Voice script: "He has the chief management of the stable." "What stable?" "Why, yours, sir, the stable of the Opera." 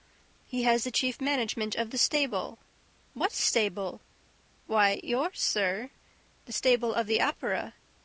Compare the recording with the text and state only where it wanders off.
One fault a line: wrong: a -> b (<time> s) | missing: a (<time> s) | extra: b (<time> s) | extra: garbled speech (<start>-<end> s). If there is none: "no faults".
no faults